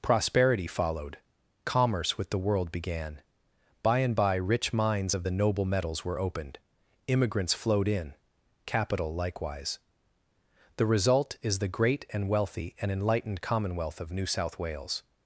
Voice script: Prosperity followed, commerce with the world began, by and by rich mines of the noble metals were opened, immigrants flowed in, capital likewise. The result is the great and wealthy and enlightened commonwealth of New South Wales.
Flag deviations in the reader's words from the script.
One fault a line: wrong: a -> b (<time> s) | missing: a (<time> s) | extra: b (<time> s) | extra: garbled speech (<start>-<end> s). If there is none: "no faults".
no faults